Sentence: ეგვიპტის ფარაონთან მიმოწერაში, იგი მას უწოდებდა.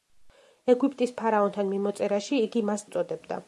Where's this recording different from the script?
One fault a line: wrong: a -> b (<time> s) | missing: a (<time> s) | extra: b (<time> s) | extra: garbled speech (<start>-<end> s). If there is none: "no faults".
no faults